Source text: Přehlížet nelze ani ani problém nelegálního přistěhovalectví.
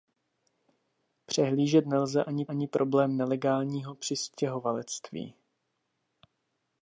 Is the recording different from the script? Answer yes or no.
no